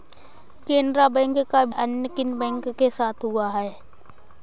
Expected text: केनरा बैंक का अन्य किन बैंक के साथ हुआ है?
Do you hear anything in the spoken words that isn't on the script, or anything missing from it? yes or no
no